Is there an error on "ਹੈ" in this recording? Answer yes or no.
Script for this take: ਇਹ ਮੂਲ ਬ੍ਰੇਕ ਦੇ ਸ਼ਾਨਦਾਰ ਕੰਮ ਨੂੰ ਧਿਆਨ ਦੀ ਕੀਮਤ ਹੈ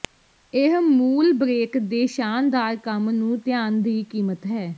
no